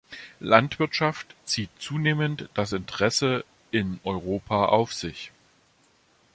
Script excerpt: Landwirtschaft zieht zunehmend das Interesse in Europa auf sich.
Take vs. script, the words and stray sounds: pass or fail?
pass